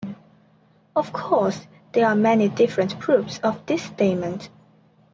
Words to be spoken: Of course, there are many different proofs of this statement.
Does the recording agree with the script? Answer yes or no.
yes